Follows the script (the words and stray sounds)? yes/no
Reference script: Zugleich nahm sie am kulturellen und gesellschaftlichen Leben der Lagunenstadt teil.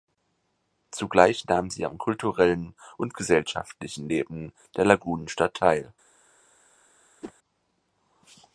no